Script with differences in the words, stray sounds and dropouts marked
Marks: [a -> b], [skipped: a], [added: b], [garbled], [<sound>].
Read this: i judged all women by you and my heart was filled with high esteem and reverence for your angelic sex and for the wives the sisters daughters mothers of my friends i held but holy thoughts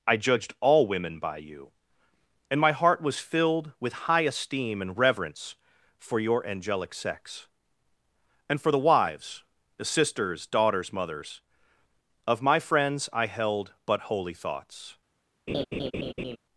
i judged all women by you and my heart was filled with high esteem and reverence for your angelic sex and for the wives the sisters daughters mothers of my friends i held but holy thoughts [laugh]